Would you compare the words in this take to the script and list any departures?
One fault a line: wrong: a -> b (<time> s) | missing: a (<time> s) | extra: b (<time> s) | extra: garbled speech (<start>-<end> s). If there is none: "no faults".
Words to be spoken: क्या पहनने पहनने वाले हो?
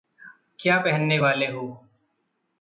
missing: पहनने (1.2 s)